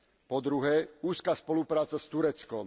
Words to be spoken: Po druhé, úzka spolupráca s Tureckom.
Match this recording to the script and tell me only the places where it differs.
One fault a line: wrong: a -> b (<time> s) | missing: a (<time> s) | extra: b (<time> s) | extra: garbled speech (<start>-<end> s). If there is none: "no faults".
no faults